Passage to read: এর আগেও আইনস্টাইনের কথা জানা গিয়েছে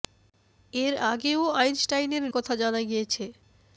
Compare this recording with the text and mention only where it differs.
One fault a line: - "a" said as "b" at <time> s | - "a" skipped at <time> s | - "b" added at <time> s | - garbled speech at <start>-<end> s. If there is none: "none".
none